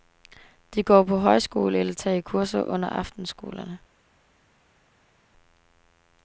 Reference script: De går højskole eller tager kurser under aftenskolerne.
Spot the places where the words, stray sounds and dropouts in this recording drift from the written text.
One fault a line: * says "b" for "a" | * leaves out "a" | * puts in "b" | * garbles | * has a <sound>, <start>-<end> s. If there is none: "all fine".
* puts in "på"